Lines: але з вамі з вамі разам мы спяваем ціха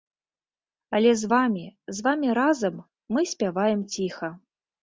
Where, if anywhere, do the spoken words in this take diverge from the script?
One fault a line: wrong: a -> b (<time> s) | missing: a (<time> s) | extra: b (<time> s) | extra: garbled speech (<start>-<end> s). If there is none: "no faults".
no faults